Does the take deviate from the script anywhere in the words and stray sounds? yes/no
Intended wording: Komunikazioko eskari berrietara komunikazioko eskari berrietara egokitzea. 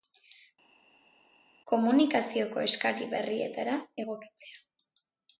yes